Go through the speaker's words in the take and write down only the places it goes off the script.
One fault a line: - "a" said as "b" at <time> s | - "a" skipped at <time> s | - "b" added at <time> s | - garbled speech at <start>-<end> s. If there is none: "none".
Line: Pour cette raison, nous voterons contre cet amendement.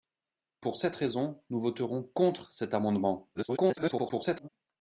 - garbled speech at 3.3-4.5 s